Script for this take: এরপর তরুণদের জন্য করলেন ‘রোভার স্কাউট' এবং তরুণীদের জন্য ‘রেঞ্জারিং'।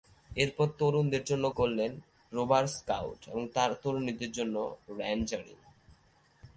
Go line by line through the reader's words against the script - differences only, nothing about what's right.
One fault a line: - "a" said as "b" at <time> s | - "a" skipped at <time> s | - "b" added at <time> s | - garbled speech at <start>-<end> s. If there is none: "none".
none